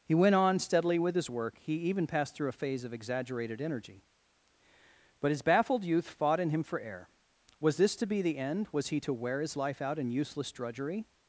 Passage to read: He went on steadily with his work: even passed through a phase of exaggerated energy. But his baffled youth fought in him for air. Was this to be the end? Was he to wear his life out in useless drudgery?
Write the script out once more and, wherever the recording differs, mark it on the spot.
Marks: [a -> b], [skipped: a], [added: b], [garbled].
He went on steadily with his work: [added: he] even passed through a phase of exaggerated energy. But his baffled youth fought in him for air. Was this to be the end? Was he to wear his life out in useless drudgery?